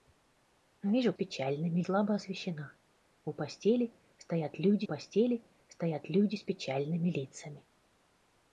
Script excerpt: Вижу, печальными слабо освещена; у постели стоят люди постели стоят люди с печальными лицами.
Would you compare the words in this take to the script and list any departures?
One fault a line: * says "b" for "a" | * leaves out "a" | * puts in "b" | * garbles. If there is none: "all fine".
all fine